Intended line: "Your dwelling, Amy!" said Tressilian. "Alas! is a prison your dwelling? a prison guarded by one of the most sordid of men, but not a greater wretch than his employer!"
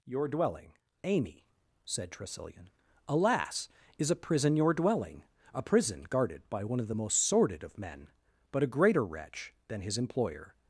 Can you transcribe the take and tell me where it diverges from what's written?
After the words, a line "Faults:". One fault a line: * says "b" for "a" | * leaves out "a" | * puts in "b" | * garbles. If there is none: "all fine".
"Your dwelling, Amy!" said Tressilian. "Alas! is a prison your dwelling? a prison guarded by one of the most sordid of men, but a greater wretch than his employer!"
Faults:
* leaves out "not"